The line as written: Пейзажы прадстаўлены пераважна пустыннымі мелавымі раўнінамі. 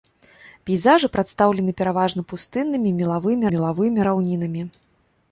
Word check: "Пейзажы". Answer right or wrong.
right